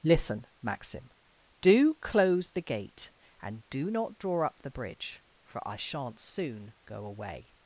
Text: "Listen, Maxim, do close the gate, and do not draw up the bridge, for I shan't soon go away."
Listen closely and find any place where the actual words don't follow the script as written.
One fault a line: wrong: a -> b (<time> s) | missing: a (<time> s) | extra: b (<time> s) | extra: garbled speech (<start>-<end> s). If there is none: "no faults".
no faults